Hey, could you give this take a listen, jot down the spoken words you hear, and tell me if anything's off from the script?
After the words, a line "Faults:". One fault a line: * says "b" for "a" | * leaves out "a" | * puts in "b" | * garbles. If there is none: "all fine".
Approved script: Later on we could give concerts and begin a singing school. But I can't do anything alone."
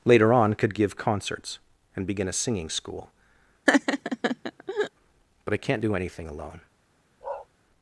Later on could give concerts and begin a singing school. But I can't do anything alone."
Faults:
* leaves out "we"